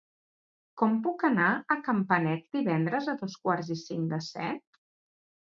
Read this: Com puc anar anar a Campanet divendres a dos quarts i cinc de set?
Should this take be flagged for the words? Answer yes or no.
yes